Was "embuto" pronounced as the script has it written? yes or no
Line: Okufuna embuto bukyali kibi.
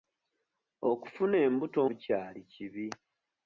yes